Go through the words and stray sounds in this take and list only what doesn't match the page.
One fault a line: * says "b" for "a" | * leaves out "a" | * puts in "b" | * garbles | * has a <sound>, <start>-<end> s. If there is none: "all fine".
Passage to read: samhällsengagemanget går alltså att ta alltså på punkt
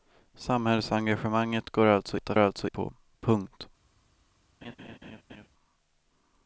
* has a laugh, 4.6-5.5 s